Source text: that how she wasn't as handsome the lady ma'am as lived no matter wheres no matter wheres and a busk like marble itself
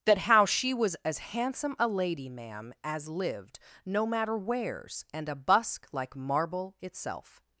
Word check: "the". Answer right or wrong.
wrong